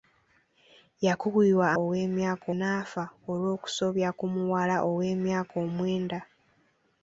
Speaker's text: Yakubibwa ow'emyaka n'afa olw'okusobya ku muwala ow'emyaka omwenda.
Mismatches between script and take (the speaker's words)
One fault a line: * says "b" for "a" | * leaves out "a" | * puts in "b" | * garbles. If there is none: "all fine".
all fine